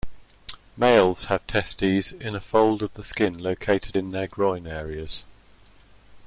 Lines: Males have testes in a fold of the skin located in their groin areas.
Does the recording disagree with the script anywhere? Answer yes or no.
no